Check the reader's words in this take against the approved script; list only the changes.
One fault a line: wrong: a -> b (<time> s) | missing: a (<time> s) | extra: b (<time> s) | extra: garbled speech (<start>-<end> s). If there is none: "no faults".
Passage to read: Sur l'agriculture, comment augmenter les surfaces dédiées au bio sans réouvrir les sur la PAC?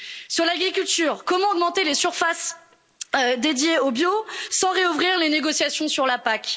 extra: négociations (5.3 s)